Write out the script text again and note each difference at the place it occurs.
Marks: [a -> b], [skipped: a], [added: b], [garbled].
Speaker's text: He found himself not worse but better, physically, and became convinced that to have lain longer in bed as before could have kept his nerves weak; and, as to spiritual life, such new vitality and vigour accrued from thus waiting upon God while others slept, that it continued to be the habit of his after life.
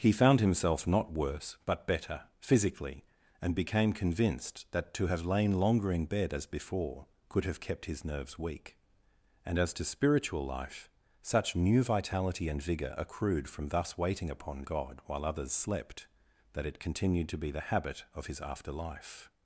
He found himself not worse but better, physically, and became convinced that to have lain longer in bed as before could have kept his nerves weak; and, as to spiritual life, such new vitality and vigour accrued from thus waiting upon God while others slept, that it continued to be the habit of his after life.